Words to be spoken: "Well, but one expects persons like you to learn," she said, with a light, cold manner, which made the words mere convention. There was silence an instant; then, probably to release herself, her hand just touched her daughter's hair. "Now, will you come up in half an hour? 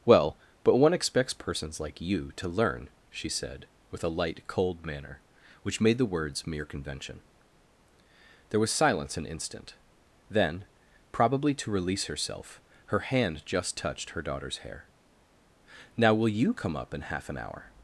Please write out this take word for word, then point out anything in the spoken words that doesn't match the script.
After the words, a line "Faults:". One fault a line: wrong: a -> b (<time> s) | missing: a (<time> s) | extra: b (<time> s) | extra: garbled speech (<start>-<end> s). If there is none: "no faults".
"Well, but one expects persons like you to learn," she said, with a light, cold manner, which made the words mere convention. There was silence an instant; then, probably to release herself, her hand just touched her daughter's hair. "Now, will you come up in half an hour?
Faults:
no faults